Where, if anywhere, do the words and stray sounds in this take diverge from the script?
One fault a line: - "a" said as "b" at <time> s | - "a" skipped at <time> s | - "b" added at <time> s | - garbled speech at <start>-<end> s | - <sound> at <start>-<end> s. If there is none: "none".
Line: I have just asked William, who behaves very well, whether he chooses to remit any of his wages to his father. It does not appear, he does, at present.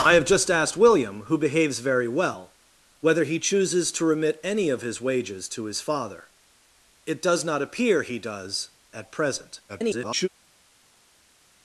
- garbled speech at 9.7-10.3 s